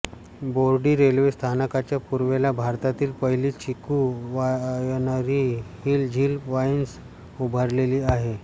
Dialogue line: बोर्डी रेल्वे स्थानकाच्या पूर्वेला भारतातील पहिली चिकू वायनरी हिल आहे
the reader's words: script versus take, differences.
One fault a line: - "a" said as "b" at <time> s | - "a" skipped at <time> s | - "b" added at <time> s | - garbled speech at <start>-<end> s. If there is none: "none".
- "झील वाईन्स उभारलेली" added at 6.1 s